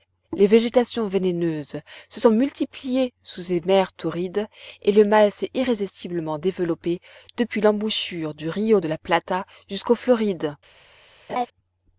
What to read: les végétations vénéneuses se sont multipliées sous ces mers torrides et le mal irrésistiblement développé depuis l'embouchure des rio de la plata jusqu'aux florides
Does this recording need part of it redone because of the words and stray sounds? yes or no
yes